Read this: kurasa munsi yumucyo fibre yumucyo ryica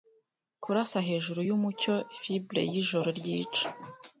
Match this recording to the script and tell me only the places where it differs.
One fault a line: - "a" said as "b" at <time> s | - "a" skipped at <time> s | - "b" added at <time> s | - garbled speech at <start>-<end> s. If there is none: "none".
- "munsi" said as "hejuru" at 1.1 s
- "yumucyo" said as "yijoro" at 2.7 s